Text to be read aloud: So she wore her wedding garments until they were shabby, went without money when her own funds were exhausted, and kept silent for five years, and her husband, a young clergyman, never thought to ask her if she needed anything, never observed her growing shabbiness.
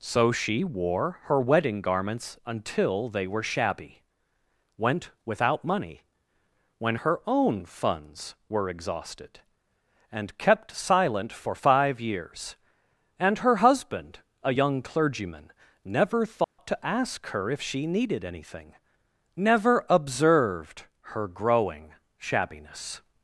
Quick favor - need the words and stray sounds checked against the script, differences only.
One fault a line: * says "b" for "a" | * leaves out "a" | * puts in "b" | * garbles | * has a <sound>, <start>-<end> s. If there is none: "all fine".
* has a dropout, 16.4-16.6 s